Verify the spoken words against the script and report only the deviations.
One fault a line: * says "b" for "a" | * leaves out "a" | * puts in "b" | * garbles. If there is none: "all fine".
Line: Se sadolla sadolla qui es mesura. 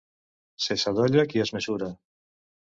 * leaves out "sadolla"